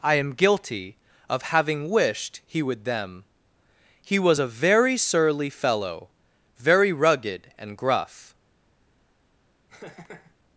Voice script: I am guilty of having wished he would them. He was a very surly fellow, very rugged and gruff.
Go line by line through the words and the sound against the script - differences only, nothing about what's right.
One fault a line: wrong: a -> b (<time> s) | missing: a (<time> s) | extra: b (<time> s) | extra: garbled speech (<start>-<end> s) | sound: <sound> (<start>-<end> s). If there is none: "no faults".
sound: laugh (9.7-10.3 s)